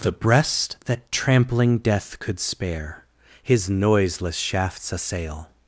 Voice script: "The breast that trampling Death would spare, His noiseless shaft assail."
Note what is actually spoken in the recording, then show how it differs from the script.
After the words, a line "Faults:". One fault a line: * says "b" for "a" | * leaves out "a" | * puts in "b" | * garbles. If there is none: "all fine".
"The breast that trampling Death could spare, His noiseless shafts assail."
Faults:
* says "could" for "would"
* says "shafts" for "shaft"